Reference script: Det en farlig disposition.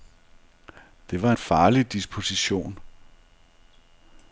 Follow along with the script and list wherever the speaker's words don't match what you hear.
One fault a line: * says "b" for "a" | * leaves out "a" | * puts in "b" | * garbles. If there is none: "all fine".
* puts in "var"